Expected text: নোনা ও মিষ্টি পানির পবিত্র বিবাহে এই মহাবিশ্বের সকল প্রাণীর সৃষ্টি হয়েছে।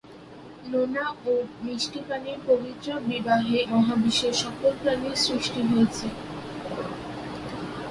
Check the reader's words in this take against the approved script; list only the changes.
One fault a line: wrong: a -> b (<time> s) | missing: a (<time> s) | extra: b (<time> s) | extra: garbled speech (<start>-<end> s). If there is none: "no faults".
missing: এই (3.6 s)